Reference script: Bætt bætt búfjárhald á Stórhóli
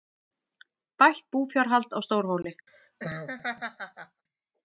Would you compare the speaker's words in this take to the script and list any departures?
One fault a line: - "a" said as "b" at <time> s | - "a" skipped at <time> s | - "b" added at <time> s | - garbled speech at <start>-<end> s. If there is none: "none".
- "bætt" skipped at 1.3 s